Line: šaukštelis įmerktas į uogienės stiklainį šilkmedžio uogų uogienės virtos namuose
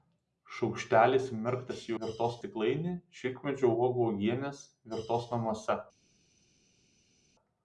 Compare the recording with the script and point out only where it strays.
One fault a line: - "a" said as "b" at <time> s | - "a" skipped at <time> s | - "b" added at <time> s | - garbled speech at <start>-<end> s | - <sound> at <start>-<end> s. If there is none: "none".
- "uogienės" said as "virtos" at 2.0 s